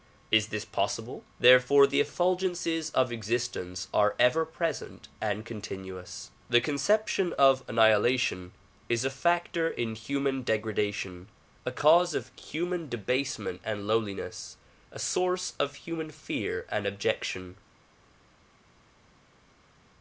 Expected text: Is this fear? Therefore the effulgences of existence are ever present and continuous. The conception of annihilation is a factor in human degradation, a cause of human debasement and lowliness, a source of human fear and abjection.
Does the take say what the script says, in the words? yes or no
no